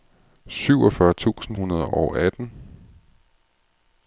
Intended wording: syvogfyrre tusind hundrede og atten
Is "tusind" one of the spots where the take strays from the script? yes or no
no